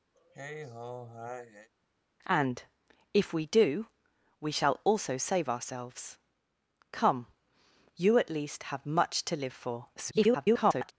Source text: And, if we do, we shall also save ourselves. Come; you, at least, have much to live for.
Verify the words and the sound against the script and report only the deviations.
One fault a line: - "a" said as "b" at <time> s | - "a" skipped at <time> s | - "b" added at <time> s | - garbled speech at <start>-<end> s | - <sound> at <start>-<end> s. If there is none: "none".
- sigh at 0.1-1.7 s
- garbled speech at 10.0-10.9 s